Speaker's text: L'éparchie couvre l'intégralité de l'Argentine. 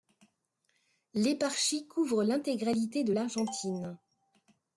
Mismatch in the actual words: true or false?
false